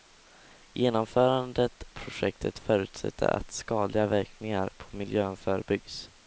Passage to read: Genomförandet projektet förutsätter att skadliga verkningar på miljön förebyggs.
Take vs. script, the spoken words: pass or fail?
pass